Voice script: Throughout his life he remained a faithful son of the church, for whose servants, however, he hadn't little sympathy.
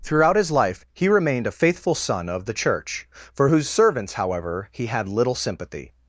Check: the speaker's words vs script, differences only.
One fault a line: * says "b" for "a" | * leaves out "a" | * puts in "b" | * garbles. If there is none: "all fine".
* says "had" for "hadn't"